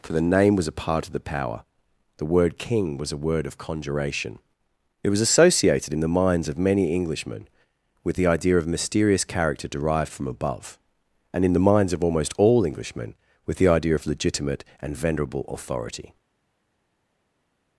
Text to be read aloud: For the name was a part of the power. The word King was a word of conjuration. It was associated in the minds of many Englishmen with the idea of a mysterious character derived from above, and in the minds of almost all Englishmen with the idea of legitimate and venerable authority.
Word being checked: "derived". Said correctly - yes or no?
yes